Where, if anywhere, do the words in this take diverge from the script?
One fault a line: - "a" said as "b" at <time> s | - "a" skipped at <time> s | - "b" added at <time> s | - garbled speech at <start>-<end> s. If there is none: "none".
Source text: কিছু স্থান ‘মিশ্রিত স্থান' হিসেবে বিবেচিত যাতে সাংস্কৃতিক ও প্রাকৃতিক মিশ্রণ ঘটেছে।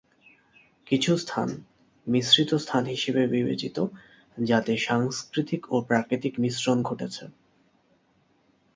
none